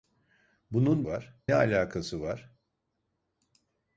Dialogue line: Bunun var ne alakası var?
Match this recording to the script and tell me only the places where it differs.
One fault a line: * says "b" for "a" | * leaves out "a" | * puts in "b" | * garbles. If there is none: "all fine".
all fine